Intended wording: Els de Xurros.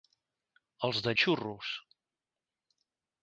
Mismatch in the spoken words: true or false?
false